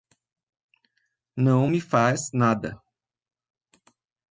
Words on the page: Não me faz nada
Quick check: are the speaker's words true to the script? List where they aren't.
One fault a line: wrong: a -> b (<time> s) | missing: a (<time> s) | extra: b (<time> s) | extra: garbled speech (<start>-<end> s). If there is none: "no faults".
no faults